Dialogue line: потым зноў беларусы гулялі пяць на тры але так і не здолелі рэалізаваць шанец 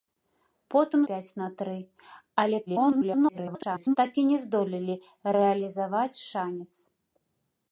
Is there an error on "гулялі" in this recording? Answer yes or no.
yes